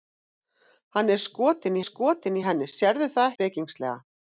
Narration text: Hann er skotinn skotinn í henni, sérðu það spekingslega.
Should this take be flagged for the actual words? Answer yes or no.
no